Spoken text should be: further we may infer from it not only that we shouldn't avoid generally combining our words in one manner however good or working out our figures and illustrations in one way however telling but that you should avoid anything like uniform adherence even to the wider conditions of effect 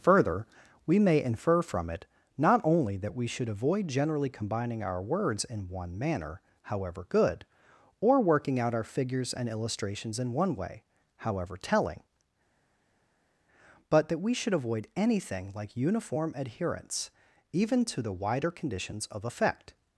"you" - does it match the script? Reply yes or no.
no